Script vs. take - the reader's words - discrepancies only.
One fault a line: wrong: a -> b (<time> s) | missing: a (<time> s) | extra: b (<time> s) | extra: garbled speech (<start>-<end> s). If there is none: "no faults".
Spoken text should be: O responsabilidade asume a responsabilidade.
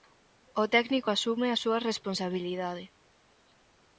wrong: responsabilidade -> técnico (0.7 s)
extra: súa (1.6 s)